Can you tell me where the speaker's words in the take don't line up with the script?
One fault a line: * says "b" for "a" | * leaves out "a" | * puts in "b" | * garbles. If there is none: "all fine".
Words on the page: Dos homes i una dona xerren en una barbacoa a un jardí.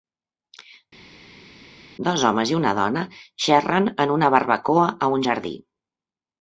all fine